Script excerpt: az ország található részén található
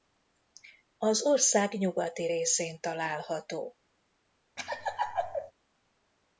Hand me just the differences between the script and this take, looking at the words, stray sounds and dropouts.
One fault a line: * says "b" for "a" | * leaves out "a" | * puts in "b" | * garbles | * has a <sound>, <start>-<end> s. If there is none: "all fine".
* says "nyugati" for "található"
* has a laugh, 4.6-5.5 s